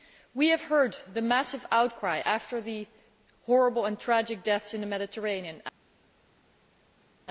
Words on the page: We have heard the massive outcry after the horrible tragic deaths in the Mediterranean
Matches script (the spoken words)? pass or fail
fail